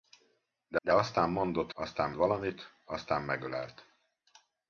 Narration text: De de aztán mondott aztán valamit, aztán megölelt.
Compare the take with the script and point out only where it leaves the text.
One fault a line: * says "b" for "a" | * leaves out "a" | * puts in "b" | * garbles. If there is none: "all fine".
all fine